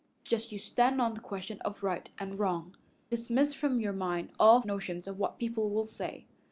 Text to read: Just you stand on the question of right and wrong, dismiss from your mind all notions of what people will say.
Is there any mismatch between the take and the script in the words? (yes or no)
no